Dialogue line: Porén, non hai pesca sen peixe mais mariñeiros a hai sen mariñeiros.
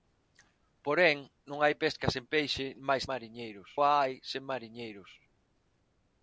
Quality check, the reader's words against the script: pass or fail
pass